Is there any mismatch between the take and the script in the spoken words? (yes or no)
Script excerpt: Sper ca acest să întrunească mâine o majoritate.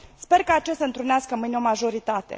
no